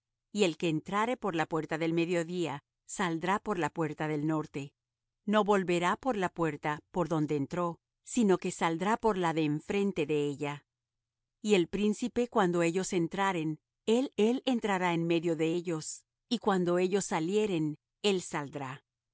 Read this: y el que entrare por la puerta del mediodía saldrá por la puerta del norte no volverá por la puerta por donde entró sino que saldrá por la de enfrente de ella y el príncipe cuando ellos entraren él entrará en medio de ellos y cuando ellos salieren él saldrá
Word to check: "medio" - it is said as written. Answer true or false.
true